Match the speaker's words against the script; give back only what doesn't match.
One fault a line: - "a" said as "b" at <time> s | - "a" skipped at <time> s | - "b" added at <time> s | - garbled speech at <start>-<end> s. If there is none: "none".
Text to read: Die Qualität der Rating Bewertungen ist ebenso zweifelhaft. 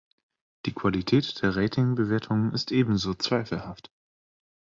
none